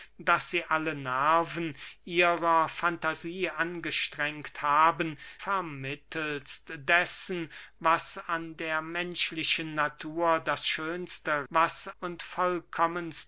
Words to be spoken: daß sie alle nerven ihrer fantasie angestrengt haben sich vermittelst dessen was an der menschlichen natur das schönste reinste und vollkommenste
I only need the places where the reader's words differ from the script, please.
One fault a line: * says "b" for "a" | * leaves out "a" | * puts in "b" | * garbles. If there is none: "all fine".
* leaves out "sich"
* says "was" for "reinste"